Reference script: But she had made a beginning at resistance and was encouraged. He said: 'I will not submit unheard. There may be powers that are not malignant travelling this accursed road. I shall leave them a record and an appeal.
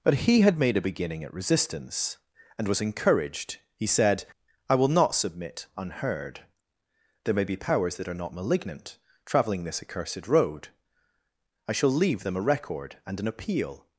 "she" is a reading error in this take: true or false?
true